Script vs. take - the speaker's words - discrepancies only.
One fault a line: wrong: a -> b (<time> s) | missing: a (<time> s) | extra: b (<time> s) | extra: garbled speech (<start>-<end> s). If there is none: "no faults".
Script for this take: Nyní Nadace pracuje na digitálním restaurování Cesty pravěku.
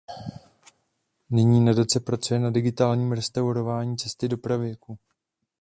extra: do (4.3 s)